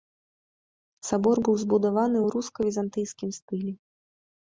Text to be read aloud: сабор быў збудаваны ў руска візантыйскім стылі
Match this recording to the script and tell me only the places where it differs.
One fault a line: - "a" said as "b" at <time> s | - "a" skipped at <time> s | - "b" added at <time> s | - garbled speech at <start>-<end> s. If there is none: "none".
none